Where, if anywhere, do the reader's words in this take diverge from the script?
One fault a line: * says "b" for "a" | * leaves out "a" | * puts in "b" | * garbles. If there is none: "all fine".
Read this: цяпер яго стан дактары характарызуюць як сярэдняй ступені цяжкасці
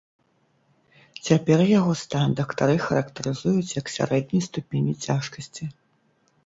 all fine